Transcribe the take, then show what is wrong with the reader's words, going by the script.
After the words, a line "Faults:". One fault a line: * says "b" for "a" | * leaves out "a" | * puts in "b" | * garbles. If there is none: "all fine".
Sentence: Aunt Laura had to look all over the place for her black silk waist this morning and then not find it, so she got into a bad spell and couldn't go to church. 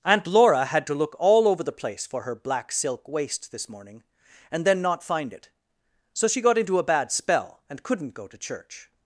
Aunt Laura had to look all over the place for her black silk waist this morning and then not find it, so she got into a bad spell and couldn't go to church.
Faults:
all fine